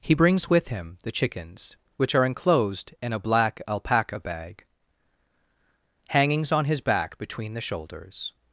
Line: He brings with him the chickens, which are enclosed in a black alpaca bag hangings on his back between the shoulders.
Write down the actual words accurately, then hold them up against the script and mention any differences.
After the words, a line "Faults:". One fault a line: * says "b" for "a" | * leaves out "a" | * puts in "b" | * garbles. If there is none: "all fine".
He brings with him the chickens, which are enclosed in a black alpaca bag hangings on his back between the shoulders.
Faults:
all fine